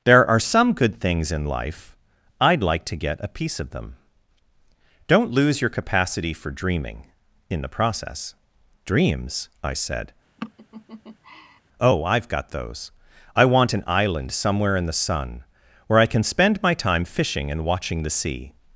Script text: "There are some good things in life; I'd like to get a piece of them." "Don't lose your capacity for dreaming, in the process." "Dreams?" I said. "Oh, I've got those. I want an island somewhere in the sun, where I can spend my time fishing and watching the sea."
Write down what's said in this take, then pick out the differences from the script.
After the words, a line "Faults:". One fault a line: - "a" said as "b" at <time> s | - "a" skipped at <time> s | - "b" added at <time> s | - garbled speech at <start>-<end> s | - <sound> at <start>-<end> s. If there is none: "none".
"There are some good things in life; I'd like to get a piece of them." "Don't lose your capacity for dreaming, in the process." "Dreams?" I said. "Oh, I've got those. I want an island somewhere in the sun, where I can spend my time fishing and watching the sea."
Faults:
- laugh at 10.4-11.6 s